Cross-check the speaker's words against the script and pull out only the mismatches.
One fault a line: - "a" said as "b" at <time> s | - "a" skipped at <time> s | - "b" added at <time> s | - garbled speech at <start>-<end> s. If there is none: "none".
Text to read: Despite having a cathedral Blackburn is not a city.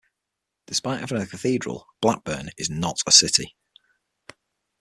none